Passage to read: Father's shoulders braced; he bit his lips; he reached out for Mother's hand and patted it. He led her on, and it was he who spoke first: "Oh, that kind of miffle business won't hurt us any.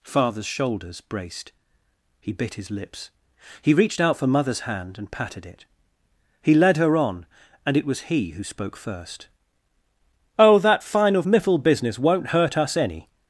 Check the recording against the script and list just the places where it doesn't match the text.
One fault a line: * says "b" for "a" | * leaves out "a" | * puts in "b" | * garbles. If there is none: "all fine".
* says "fine" for "kind"